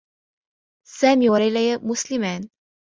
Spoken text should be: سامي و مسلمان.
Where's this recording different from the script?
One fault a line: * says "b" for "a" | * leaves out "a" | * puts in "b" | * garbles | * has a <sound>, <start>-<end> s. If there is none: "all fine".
* puts in "ليلى"